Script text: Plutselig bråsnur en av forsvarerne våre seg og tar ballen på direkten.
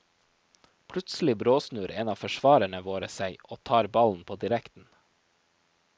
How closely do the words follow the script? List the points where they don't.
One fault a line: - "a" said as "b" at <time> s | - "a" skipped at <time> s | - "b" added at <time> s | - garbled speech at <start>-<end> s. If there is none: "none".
none